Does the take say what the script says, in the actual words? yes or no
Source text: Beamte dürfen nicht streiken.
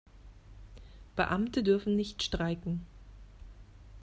yes